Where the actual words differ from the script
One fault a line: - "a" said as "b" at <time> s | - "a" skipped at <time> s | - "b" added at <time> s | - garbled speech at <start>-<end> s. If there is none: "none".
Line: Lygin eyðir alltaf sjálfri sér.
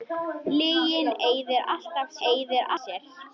- "sjálfri" said as "eyðir" at 2.3 s